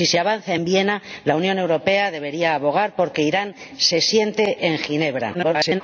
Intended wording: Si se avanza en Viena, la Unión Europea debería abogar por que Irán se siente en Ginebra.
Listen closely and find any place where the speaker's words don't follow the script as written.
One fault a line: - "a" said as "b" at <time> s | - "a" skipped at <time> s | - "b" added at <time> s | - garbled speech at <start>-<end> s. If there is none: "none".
- garbled speech at 5.3-5.8 s